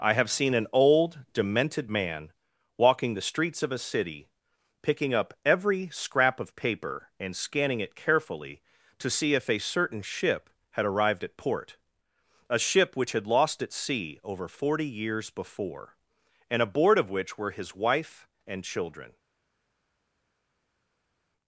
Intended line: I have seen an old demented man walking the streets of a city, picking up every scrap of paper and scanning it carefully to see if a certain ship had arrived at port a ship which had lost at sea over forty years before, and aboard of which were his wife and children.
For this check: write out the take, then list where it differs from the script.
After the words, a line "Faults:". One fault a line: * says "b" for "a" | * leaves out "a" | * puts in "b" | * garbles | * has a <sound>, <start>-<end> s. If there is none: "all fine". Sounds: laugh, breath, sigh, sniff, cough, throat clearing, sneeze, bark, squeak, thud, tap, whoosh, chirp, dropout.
I have seen an old demented man walking the streets of a city, picking up every scrap of paper and scanning it carefully to see if a certain ship had arrived at port a ship which had lost at sea over forty years before, and aboard of which were his wife and children.
Faults:
all fine